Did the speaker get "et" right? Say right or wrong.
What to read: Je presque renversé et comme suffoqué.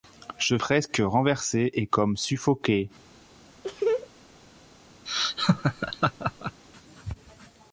right